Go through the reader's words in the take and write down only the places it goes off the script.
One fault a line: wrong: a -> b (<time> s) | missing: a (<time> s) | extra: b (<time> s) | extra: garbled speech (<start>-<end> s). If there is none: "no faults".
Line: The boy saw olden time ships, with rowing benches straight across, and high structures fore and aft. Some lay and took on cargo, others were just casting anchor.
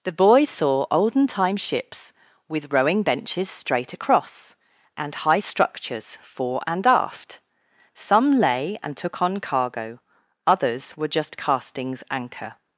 wrong: casting -> castings (11.4 s)